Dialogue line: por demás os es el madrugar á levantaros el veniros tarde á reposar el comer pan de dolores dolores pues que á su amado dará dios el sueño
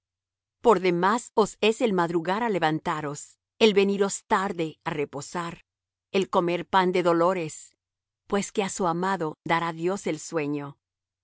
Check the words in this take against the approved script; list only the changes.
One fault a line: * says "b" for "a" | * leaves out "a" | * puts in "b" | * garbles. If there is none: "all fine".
* leaves out "dolores"